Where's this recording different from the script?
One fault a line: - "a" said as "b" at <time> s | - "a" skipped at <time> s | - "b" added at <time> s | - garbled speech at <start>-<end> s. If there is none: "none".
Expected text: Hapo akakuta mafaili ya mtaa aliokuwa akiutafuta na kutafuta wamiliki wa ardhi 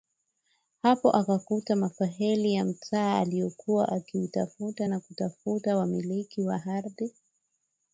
none